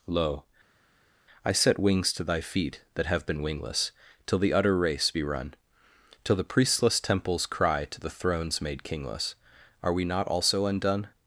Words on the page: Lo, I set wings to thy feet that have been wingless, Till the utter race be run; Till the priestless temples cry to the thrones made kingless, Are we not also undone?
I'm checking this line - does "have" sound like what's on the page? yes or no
yes